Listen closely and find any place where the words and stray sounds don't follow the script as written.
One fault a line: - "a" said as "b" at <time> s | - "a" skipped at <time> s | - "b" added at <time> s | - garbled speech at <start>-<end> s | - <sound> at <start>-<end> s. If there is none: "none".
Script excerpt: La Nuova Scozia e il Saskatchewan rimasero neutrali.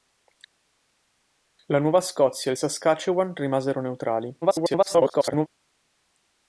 - garbled speech at 4.4-5.5 s